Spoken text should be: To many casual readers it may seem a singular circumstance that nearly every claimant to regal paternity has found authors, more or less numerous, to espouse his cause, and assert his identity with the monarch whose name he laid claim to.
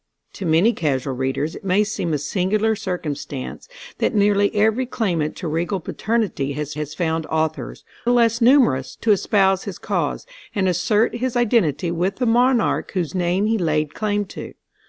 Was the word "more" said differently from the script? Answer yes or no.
yes